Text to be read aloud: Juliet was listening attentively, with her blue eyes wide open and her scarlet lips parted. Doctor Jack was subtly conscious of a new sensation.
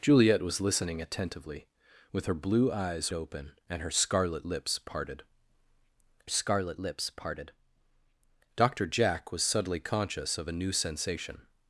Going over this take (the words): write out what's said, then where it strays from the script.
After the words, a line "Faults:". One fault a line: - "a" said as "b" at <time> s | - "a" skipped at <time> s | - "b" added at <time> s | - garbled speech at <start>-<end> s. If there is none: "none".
Juliet was listening attentively, with her blue eyes open and her scarlet lips parted scarlet lips parted. Doctor Jack was subtly conscious of a new sensation.
Faults:
- "wide" skipped at 3.1 s
- "scarlet lips parted" added at 6.3 s